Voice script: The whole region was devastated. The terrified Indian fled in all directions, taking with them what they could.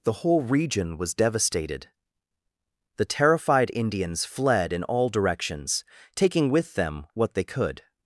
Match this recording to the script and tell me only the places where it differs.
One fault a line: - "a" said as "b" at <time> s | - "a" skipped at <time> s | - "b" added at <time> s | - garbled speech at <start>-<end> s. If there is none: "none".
- "Indian" said as "Indians" at 3.7 s